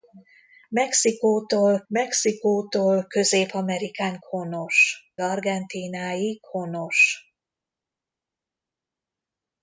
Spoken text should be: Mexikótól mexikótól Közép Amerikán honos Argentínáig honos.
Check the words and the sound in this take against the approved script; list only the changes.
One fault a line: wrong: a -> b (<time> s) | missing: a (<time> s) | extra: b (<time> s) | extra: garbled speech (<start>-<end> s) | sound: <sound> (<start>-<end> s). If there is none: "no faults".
no faults